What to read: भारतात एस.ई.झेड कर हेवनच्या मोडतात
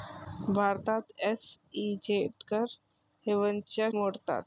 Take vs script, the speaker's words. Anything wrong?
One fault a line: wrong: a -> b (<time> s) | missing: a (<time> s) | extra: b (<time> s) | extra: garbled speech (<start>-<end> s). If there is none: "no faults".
no faults